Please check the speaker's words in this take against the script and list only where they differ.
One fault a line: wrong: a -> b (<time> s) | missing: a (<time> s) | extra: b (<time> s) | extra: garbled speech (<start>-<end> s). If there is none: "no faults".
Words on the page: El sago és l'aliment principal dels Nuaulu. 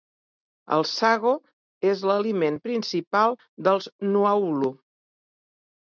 no faults